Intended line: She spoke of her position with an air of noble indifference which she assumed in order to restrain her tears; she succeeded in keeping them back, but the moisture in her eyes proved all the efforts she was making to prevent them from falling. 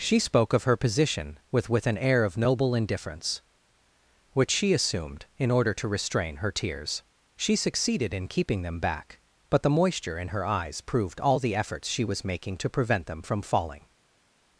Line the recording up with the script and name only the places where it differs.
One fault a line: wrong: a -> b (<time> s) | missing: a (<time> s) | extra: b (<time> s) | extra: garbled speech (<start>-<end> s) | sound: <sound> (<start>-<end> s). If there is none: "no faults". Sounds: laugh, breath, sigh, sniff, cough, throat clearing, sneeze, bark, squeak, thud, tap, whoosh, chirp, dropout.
extra: with (1.7 s)